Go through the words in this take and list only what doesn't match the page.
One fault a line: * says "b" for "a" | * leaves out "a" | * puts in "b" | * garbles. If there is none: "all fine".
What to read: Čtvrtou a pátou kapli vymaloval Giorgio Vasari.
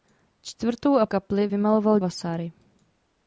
* leaves out "pátou"
* leaves out "Giorgio"